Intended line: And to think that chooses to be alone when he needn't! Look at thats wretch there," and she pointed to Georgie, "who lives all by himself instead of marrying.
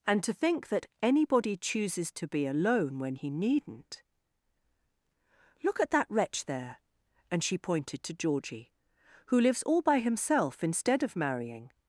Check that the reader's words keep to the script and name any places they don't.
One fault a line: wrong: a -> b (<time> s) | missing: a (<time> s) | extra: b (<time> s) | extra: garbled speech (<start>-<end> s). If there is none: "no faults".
extra: anybody (1.0 s)
wrong: thats -> that (5.9 s)